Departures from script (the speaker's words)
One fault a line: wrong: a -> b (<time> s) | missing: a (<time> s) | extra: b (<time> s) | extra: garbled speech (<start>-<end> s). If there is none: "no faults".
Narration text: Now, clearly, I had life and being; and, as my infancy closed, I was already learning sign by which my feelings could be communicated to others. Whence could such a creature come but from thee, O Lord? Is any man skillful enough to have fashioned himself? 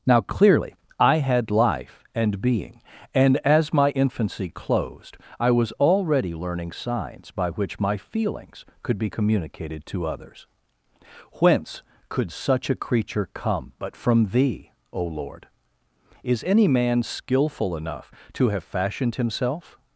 wrong: sign -> signs (6.7 s)